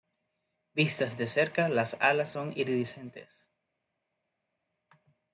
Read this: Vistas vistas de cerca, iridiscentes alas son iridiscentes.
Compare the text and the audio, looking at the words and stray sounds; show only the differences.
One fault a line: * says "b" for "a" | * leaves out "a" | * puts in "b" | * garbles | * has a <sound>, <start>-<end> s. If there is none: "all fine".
* leaves out "vistas"
* says "las" for "iridiscentes"